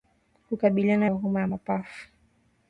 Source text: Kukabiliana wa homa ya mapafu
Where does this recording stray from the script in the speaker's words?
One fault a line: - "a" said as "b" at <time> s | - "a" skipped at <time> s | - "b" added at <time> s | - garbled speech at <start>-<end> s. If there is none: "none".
none